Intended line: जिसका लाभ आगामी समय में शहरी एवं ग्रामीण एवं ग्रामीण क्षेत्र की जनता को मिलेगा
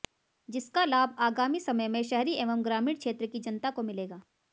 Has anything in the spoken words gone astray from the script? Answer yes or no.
yes